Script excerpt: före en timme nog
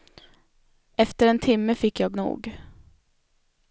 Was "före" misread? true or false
true